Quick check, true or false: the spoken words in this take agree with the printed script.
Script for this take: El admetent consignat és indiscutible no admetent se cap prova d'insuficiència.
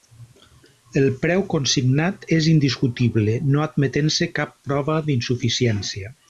false